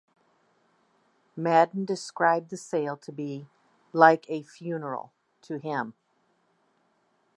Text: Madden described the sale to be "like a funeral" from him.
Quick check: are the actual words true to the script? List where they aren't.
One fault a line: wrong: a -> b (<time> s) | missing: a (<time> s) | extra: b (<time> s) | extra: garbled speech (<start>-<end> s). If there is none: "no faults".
wrong: from -> to (5.4 s)